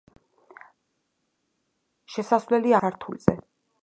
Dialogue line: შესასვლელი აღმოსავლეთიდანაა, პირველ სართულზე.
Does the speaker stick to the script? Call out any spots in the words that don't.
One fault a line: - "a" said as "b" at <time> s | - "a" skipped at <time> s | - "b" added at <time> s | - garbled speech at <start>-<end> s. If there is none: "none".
- "აღმოსავლეთიდანაა პირველ" skipped at 2.7 s